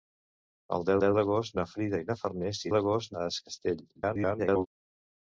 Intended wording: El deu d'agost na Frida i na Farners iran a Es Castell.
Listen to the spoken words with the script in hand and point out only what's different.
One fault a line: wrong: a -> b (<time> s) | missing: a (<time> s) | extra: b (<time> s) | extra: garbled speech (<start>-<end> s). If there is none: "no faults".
extra: deu (1.0 s)
wrong: iran -> d'agost (2.7 s)
extra: garbled speech (3.9-4.7 s)